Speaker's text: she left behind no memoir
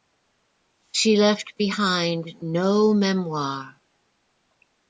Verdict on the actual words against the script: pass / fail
pass